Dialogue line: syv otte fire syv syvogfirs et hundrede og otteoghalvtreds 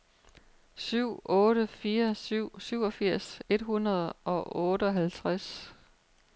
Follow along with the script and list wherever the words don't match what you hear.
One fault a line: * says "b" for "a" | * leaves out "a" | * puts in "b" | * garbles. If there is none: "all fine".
all fine